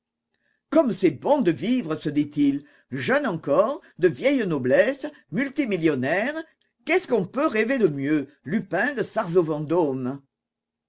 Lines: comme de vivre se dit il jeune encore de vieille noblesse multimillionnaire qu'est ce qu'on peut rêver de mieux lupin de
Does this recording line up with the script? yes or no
no